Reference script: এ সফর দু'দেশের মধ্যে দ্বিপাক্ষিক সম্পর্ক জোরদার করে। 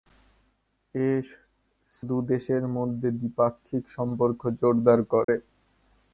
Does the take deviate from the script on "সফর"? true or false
true